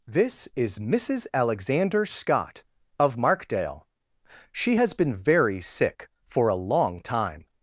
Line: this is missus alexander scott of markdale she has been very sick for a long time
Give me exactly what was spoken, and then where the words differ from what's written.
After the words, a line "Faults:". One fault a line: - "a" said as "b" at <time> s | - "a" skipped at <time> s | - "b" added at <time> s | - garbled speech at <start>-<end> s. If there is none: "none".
this is missus alexander scott of markdale she has been very sick for a long time
Faults:
none